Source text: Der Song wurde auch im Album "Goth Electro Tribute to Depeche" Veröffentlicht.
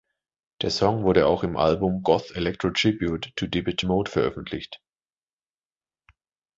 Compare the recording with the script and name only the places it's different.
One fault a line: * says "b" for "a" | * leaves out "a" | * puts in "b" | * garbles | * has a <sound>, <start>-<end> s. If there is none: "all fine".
* puts in "Mode"